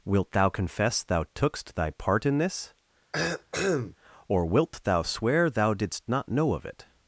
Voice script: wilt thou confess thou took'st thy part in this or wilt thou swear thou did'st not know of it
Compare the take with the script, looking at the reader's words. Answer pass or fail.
pass